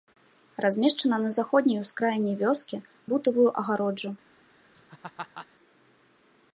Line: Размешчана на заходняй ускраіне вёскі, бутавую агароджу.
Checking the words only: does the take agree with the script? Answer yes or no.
yes